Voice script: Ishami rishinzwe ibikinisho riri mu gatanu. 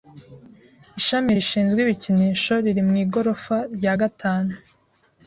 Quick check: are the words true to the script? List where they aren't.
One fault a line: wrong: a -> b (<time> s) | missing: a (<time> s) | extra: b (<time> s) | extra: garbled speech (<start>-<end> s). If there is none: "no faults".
extra: igorofa rya (3.0 s)